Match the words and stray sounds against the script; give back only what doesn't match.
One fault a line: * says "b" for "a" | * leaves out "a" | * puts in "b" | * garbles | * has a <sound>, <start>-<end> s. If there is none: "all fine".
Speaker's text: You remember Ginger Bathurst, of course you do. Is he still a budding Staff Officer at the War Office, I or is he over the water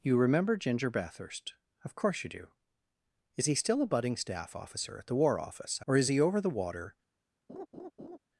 * has a laugh, 7.5-8.2 s